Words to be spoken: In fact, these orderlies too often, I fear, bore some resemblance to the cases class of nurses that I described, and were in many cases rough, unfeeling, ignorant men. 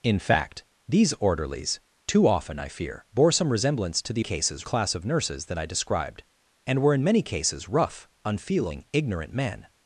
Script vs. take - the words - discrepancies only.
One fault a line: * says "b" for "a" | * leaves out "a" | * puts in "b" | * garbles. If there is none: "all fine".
all fine